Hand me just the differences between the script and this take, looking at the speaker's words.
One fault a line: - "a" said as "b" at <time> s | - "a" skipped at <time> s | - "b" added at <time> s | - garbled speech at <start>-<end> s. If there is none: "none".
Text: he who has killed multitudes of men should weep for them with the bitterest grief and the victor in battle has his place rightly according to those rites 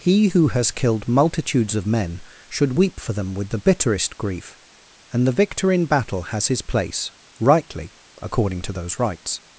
none